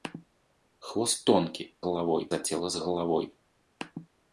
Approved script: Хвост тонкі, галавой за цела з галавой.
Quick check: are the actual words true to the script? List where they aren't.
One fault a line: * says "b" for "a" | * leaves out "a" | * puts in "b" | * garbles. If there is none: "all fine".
all fine